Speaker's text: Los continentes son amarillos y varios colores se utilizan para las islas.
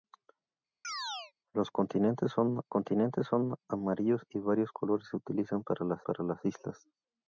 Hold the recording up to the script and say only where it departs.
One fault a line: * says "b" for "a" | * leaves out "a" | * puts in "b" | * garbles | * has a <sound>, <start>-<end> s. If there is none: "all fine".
* has a chirp, 0.8-1.3 s
* puts in "continentes son"
* puts in "para las"